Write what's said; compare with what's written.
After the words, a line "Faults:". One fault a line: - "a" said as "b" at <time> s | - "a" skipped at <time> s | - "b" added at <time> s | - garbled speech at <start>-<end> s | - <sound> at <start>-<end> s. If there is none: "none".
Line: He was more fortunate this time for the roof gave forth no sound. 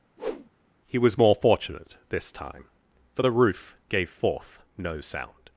He was more fortunate this time for the roof gave forth no sound.
Faults:
- whoosh at 0.2-0.5 s